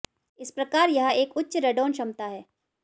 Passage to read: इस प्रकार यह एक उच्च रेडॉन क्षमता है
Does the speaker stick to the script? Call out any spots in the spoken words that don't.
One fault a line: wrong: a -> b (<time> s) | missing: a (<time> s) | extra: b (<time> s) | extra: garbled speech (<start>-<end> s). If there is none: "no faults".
no faults